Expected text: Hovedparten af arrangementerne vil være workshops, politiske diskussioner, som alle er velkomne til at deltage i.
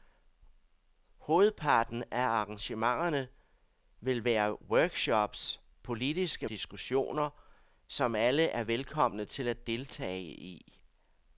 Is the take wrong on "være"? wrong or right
right